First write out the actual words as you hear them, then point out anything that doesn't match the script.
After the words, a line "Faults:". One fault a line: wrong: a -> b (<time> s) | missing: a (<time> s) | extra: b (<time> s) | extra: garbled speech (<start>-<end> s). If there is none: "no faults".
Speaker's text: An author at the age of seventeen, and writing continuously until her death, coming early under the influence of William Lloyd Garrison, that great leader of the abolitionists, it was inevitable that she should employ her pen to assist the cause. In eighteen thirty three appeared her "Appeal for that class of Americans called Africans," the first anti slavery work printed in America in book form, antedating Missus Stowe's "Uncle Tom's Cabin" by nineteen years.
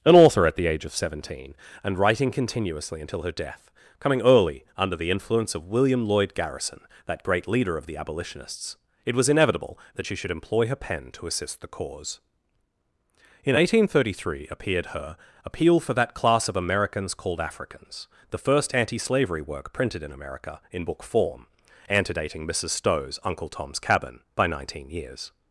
An author at the age of seventeen, and writing continuously until her death, coming early under the influence of William Lloyd Garrison, that great leader of the abolitionists, it was inevitable that she should employ her pen to assist the cause. In eighteen thirty three appeared her "Appeal for that class of Americans called Africans," the first anti slavery work printed in America in book form, antedating Missus Stowe's "Uncle Tom's Cabin" by nineteen years.
Faults:
no faults